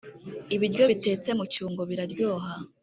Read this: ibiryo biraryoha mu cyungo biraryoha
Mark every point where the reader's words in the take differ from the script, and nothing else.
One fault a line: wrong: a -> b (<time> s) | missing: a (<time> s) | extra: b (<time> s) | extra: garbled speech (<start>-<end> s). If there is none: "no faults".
wrong: biraryoha -> bitetse (0.9 s)